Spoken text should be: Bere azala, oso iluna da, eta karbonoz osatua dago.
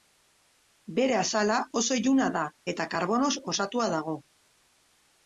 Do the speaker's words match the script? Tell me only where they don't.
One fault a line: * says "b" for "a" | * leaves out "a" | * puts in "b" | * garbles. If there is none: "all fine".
all fine